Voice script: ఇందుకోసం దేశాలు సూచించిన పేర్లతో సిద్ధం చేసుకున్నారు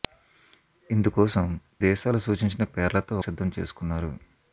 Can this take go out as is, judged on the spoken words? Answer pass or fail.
pass